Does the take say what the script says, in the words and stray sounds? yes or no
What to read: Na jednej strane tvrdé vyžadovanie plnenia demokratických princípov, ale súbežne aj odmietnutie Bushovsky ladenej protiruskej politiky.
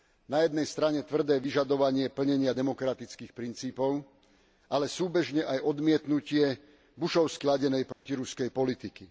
no